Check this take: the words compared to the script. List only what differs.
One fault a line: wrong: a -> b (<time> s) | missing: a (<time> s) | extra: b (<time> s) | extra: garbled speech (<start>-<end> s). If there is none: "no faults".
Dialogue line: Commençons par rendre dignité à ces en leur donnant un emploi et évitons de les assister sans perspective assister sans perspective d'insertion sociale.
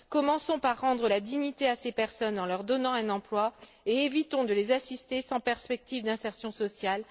extra: la (1.1 s)
extra: personnes (1.9 s)
missing: assister sans perspective (6.0 s)